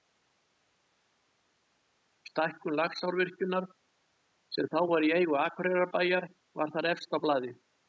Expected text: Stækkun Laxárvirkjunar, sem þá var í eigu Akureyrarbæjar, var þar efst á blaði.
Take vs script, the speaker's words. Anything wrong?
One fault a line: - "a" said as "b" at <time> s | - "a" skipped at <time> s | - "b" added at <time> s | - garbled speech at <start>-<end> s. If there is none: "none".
none